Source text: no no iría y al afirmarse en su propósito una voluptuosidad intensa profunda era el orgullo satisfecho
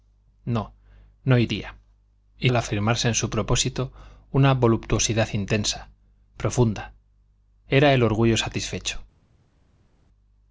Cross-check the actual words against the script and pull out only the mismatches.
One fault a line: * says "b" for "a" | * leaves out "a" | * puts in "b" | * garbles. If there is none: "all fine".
all fine